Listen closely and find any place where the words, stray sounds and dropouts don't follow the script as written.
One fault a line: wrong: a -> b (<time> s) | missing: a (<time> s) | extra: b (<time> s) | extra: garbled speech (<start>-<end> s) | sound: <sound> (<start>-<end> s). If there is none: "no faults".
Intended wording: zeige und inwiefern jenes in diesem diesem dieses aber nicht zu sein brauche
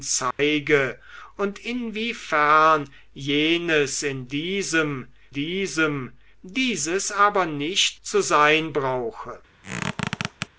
sound: dropout (0.3-0.4 s)
sound: squeak (9.6-10.5 s)